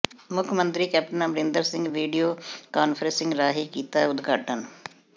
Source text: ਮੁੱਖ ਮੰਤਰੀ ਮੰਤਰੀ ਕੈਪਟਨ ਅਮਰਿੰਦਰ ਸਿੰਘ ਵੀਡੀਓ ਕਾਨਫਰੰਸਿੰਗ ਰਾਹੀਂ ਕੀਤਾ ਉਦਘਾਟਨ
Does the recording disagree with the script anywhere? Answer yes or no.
yes